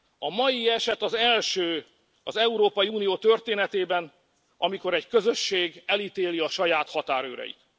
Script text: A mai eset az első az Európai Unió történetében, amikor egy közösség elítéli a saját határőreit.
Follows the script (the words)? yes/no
yes